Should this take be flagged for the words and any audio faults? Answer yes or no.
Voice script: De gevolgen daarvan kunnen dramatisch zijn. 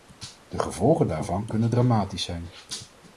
no